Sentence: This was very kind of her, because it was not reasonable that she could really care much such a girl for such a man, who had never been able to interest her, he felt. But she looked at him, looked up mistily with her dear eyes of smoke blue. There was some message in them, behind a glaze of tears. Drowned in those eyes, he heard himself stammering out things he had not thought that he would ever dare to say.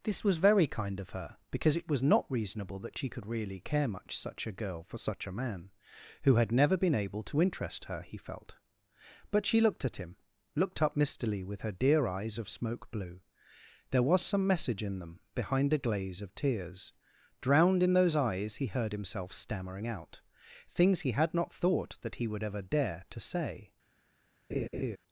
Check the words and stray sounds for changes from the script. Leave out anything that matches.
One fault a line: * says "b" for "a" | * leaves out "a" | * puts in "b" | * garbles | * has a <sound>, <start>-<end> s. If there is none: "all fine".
* has a laugh, 24.5-25.0 s